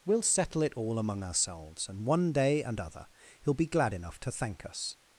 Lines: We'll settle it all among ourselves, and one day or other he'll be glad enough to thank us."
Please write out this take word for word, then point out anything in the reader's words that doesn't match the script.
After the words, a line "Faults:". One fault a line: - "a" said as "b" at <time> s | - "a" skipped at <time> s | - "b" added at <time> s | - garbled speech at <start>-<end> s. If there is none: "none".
We'll settle it all among ourselves, and one day and other he'll be glad enough to thank us."
Faults:
- "or" said as "and" at 2.6 s